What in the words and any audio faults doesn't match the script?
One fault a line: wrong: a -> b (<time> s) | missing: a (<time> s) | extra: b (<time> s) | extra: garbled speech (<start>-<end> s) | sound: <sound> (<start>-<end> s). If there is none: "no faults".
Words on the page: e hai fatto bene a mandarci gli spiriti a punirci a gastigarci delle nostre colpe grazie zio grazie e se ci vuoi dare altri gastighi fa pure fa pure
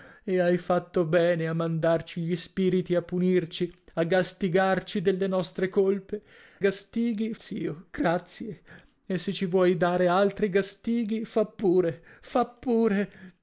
wrong: grazie -> gastighi (6.6 s)